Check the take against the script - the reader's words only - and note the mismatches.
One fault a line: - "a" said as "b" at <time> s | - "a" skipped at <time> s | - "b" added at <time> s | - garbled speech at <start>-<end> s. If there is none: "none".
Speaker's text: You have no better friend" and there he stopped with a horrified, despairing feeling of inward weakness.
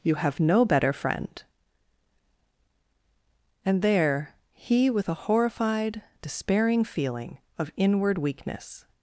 - "stopped" skipped at 4.9 s